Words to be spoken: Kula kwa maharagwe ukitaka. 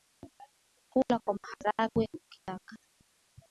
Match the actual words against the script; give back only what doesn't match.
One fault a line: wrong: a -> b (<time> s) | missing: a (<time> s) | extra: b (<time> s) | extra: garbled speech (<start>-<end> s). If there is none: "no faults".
no faults